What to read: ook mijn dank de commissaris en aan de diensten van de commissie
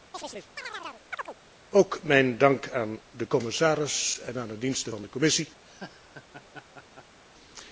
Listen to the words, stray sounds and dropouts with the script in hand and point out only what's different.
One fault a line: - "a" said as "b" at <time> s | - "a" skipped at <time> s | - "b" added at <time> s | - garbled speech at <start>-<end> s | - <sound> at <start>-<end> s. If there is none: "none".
- chirp at 0.1-1.4 s
- "aan" added at 2.7 s
- laugh at 5.6-7.2 s